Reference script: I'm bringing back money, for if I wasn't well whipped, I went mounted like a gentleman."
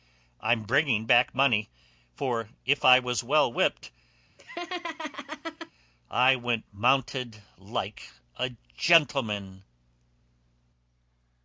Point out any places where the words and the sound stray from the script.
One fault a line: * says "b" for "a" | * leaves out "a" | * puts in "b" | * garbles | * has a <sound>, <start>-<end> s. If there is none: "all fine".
* says "was" for "wasn't"
* has a laugh, 4.4-5.7 s